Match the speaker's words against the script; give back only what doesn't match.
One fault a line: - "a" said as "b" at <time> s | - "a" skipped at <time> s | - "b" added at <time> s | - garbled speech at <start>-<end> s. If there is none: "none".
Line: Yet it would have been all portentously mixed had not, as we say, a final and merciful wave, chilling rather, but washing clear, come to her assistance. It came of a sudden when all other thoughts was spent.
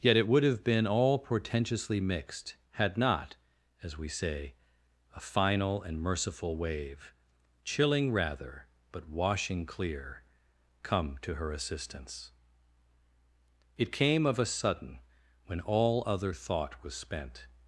- "thoughts" said as "thought" at 16.3 s